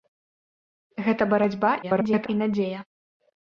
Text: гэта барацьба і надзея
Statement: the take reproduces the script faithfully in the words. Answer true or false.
false